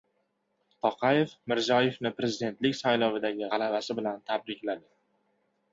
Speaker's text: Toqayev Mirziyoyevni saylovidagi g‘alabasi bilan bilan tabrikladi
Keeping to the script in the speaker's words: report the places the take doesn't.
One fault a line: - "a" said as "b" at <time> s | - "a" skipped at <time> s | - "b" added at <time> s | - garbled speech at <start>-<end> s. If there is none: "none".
- "prezidentlik" added at 2.2 s
- "bilan" skipped at 4.2 s